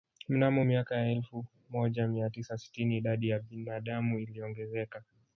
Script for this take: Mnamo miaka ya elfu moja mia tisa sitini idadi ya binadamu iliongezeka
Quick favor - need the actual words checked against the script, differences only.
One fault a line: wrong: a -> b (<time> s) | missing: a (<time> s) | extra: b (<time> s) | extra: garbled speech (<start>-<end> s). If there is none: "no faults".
no faults